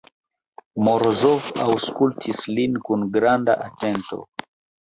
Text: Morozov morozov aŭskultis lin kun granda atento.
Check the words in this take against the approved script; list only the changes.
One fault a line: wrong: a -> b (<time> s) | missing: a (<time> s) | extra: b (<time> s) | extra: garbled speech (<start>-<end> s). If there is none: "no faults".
missing: morozov (1.5 s)